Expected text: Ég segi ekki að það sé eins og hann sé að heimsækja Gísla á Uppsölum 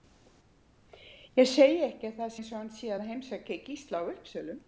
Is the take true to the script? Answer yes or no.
no